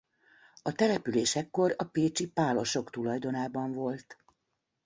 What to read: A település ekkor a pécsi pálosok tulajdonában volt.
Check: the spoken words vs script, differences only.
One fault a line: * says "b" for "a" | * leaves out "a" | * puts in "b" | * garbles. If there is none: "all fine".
all fine